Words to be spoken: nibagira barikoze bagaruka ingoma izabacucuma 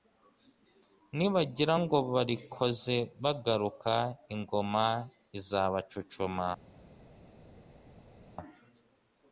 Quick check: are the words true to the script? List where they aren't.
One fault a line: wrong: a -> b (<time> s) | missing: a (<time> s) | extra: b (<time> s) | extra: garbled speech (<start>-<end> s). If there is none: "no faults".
extra: ngo (1.8 s)